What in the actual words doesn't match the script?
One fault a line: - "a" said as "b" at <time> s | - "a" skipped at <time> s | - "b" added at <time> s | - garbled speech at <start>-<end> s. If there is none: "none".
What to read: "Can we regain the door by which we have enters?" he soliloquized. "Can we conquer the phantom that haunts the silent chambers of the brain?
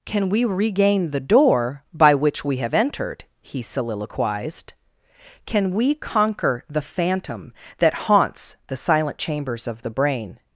- "enters" said as "entered" at 2.7 s